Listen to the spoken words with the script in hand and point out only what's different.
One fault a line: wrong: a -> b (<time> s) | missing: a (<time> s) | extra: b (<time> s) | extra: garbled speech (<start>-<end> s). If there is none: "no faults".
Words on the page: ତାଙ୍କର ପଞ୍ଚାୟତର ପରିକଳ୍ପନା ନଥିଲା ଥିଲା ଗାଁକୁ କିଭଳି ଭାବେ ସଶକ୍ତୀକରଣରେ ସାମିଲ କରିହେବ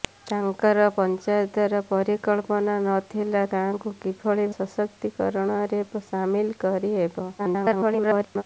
missing: ଥିଲା (3.4 s)
missing: ଭାବେ (4.5 s)
extra: garbled speech (7.4-8.4 s)